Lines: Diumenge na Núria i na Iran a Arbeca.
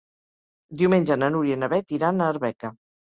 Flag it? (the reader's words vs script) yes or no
yes